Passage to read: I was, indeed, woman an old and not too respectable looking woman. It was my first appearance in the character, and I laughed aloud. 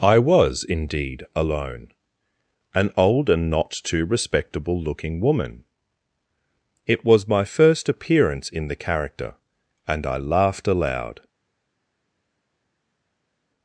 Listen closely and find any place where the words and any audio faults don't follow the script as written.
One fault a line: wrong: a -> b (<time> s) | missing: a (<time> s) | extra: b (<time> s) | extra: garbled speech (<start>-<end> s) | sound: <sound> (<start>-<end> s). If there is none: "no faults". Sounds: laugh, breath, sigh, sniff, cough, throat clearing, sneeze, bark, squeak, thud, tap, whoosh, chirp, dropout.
wrong: woman -> alone (1.4 s)